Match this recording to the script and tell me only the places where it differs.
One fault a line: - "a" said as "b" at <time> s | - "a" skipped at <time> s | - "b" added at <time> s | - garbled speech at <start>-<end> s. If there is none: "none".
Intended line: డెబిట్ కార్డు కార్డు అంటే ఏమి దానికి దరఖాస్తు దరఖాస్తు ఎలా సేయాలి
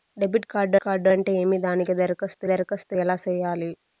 none